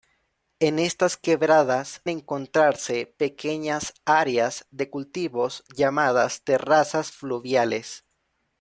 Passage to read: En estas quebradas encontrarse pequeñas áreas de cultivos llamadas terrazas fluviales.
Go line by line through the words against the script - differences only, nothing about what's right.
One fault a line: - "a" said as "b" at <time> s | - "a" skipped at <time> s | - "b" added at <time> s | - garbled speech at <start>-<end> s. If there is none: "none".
none